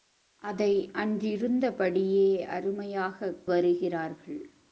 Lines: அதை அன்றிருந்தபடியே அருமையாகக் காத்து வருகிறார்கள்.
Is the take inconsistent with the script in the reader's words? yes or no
yes